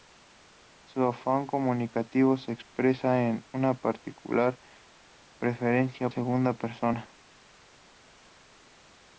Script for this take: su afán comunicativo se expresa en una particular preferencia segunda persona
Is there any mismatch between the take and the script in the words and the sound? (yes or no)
no